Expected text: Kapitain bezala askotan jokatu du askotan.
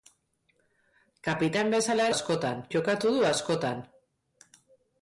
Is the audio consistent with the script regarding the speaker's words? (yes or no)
yes